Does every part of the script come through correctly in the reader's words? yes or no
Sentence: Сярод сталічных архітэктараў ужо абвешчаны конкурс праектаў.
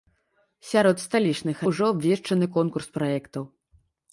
no